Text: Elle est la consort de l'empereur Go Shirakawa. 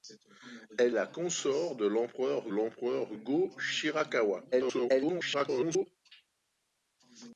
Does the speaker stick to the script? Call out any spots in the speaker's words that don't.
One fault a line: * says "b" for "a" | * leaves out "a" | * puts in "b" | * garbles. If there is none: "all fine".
* leaves out "est"
* puts in "l'empereur"
* garbles